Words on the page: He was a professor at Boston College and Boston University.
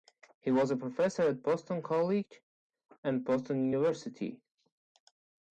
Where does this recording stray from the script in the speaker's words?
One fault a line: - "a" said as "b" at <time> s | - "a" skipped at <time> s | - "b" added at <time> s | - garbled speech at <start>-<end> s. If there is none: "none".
none